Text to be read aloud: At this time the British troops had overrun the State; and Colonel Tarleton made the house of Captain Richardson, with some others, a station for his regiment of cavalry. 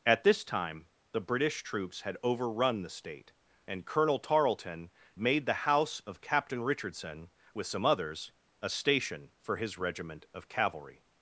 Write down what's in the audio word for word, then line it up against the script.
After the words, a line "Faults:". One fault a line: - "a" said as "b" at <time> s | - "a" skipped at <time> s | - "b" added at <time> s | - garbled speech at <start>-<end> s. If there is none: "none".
At this time the British troops had overrun the State; and Colonel Tarleton made the house of Captain Richardson, with some others, a station for his regiment of cavalry.
Faults:
none